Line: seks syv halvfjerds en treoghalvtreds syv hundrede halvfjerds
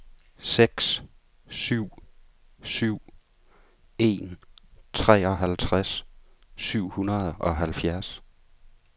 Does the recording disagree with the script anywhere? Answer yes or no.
yes